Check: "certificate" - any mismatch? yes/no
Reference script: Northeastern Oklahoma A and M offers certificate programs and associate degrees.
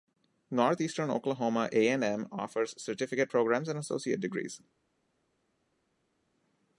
no